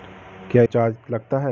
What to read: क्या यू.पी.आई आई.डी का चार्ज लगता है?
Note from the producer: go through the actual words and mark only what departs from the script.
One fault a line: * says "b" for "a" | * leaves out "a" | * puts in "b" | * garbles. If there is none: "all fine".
* leaves out "यू.पी.आई आई.डी का"